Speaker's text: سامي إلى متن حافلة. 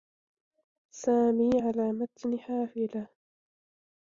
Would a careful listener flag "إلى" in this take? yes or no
yes